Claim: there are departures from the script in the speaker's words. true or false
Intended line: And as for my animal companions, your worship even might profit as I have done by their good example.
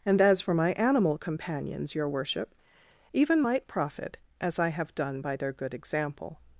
false